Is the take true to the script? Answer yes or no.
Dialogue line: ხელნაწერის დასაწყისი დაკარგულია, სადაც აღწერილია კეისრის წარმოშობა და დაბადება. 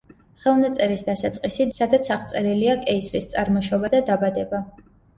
no